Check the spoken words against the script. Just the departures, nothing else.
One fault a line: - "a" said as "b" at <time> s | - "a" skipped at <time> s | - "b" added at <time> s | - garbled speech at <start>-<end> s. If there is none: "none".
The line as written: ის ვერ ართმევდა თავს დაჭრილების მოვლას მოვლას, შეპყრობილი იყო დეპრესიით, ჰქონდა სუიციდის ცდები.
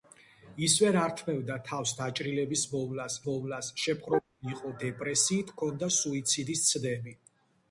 none